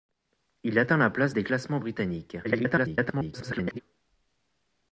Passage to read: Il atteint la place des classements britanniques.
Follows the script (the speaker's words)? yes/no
no